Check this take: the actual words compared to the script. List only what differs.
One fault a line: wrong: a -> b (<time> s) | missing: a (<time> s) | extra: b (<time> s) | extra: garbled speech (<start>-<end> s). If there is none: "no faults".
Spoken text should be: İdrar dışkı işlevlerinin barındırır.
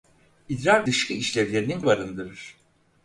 no faults